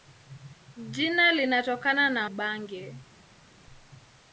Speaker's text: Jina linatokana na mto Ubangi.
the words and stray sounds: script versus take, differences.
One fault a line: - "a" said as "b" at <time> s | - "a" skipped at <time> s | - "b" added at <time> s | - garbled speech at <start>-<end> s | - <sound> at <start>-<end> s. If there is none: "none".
- "mto" skipped at 2.3 s